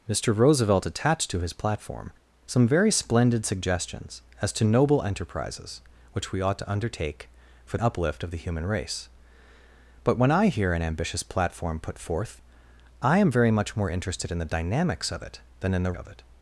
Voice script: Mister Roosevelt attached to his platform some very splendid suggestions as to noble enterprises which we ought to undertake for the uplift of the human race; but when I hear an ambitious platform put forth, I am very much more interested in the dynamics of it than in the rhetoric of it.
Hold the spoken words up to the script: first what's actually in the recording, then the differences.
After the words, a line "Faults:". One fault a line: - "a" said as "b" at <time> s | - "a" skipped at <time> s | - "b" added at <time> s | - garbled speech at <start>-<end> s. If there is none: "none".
Mister Roosevelt attached to his platform some very splendid suggestions as to noble enterprises which we ought to undertake for uplift of the human race; but when I hear an ambitious platform put forth, I am very much more interested in the dynamics of it than in the of it.
Faults:
- "the" skipped at 7.8 s
- "rhetoric" skipped at 15.9 s